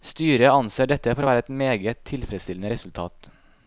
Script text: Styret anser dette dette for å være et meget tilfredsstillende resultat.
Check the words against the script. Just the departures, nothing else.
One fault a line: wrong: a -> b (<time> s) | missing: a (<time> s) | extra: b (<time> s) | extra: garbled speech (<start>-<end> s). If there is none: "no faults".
missing: dette (1.1 s)